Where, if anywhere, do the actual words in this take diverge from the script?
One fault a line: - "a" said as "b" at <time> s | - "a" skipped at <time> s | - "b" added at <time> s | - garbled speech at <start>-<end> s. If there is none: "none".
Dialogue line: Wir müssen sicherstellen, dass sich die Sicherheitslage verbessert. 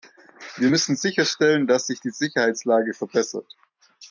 none